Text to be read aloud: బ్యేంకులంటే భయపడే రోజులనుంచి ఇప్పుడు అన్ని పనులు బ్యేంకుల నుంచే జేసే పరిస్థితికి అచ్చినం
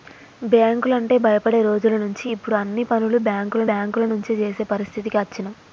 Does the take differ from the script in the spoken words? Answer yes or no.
yes